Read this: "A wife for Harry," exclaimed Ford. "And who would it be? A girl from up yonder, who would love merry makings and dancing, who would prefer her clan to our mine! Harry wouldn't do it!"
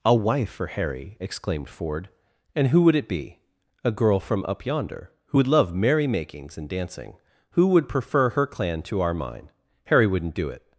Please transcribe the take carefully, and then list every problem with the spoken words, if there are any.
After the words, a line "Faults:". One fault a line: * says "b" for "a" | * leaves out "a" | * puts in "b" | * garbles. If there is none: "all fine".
"A wife for Harry," exclaimed Ford. "And who would it be? A girl from up yonder, who would love merry makings and dancing, who would prefer her clan to our mine! Harry wouldn't do it!"
Faults:
all fine